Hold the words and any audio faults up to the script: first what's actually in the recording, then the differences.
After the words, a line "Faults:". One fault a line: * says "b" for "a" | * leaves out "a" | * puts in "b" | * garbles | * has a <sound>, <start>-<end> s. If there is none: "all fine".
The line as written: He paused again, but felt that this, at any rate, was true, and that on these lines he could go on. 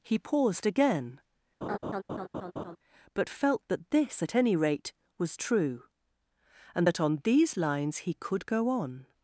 He paused again, but felt that this, at any rate, was true, and that on these lines he could go on.
Faults:
* has a laugh, 1.6-2.8 s